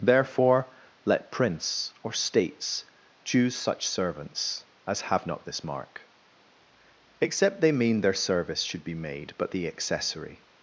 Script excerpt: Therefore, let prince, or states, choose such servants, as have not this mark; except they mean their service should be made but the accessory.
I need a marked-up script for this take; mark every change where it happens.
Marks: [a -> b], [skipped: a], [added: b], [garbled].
Therefore, let prince, or states, choose such servants, as have not this mark; except they mean their service should be made but the accessory.